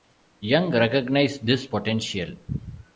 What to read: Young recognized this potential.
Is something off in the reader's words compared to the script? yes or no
no